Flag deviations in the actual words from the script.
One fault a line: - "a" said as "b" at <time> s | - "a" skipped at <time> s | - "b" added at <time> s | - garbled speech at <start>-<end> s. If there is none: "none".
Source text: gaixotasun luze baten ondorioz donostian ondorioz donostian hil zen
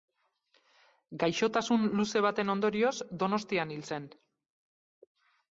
- "ondorioz donostian" skipped at 3.8 s